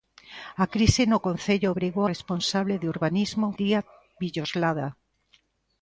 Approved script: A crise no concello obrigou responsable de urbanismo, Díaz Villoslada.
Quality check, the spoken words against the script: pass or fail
pass